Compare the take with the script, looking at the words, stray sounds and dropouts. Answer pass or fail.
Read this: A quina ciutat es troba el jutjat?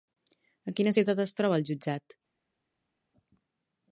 pass